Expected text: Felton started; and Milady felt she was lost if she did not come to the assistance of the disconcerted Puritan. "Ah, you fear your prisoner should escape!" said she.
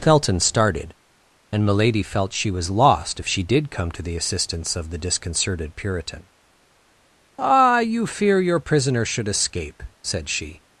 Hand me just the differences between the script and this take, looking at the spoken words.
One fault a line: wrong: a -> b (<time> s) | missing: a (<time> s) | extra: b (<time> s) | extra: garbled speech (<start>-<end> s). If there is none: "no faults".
missing: not (3.7 s)